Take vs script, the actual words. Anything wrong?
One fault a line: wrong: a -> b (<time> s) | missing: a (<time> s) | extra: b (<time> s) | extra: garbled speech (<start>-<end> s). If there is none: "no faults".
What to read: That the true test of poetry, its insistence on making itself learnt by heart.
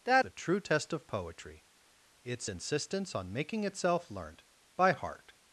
no faults